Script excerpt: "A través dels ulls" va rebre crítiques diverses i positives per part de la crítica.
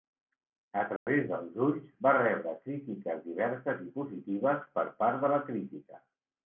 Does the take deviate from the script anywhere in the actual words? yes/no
no